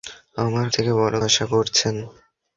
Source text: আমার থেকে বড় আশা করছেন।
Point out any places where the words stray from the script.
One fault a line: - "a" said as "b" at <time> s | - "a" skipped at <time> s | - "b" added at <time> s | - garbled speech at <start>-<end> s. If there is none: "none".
none